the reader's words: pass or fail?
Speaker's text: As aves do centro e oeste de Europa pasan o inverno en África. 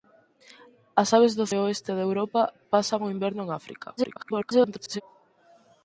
fail